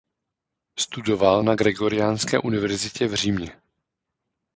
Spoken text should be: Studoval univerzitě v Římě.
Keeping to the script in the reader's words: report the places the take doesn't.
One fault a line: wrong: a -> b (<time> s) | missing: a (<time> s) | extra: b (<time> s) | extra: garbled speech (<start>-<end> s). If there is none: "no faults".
extra: na Gregoriánské (1.4 s)